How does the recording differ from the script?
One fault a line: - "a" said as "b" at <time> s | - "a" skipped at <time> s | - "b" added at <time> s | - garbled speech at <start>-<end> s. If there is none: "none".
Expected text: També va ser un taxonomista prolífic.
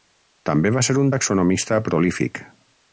none